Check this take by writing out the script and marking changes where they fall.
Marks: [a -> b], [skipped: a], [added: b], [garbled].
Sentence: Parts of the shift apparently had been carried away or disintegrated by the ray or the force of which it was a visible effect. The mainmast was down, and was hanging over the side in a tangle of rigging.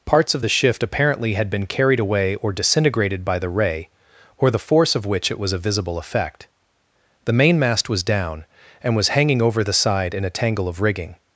Parts of the shift apparently had been carried away or disintegrated by the ray or the force of which it was a visible effect. The mainmast was down, and was hanging over the side in a tangle of rigging.